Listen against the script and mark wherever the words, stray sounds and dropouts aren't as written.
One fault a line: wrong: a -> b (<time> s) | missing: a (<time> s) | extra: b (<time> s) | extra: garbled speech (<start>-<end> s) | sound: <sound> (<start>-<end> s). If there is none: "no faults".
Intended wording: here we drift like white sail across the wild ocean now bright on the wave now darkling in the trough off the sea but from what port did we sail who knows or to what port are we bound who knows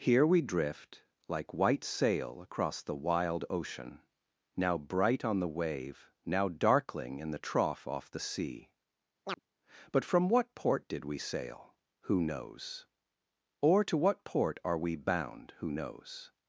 sound: chirp (9.3-9.4 s)